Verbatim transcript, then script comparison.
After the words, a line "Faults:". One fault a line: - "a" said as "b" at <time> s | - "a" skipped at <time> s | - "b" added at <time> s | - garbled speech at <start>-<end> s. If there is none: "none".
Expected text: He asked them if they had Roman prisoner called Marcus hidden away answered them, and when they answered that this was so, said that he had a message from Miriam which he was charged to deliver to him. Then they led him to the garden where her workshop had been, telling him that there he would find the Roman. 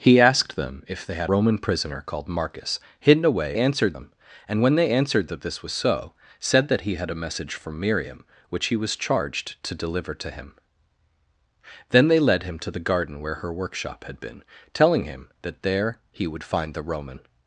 He asked them if they had Roman prisoner called Marcus hidden away answered them, and when they answered that this was so, said that he had a message from Miriam which he was charged to deliver to him. Then they led him to the garden where her workshop had been, telling him that there he would find the Roman.
Faults:
none